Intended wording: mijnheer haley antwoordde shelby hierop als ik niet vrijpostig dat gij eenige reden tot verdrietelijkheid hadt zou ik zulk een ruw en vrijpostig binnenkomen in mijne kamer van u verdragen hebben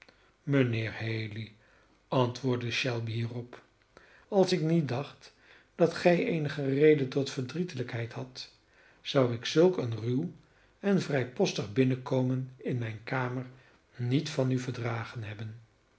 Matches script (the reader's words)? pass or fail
fail